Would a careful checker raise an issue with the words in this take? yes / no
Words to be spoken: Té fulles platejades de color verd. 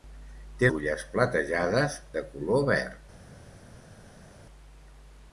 no